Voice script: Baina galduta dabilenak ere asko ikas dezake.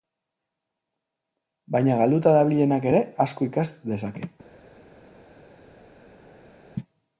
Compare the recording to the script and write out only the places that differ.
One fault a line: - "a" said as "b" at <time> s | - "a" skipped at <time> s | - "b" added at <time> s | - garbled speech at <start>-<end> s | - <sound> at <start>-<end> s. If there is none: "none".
none